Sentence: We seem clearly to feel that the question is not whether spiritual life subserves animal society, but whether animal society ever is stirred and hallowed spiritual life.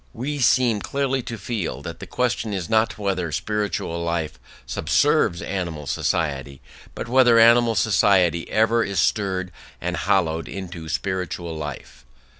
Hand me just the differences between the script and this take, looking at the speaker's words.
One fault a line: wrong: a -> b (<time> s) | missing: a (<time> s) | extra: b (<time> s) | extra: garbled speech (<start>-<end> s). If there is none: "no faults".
extra: into (10.5 s)